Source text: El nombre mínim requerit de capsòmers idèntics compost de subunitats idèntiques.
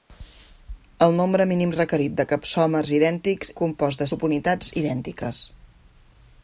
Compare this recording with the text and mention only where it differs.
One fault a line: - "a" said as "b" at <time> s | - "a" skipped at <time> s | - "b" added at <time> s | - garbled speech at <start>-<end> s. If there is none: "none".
none